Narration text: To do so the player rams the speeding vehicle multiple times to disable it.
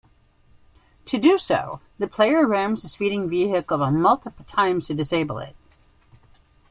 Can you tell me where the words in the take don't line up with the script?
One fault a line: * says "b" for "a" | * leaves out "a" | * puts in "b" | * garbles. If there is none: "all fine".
all fine